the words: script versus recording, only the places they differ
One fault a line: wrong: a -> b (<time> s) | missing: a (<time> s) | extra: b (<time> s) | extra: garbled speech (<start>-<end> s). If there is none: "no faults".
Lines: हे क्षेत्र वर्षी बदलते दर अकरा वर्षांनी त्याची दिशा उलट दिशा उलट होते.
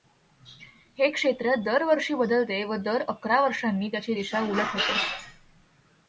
extra: दर (1.6 s)
extra: व (2.6 s)
missing: दिशा उलट (4.7 s)